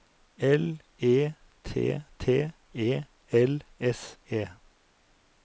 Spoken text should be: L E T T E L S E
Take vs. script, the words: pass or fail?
pass